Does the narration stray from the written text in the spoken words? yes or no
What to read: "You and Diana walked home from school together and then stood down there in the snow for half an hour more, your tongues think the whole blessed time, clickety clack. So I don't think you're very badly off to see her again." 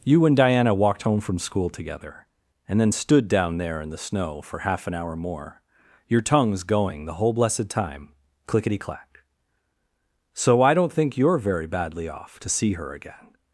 yes